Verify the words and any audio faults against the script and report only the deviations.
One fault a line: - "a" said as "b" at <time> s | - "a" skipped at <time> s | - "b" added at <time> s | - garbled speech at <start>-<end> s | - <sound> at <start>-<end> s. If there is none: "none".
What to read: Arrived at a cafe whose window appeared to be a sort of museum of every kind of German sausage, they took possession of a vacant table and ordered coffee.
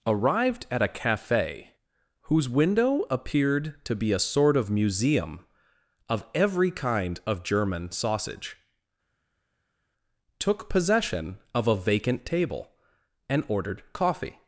- "they" skipped at 8.6 s